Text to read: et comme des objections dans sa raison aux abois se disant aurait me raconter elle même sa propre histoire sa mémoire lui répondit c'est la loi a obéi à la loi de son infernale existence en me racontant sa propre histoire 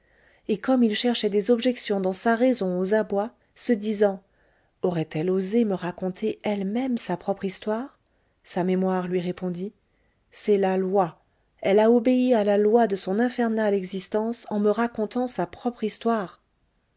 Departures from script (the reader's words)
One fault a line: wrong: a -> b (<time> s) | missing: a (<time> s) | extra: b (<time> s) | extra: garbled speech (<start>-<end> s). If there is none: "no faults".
extra: il cherchait (0.8 s)
extra: elle osé (5.1 s)
extra: elle (11.6 s)